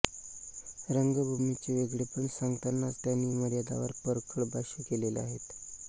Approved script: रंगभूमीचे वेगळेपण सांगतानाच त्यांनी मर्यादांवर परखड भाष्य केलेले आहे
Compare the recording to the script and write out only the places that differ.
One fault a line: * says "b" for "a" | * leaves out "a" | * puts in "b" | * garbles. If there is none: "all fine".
all fine